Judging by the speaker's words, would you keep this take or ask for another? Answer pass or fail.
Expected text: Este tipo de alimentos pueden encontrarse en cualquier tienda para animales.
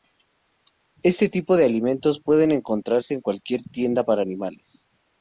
pass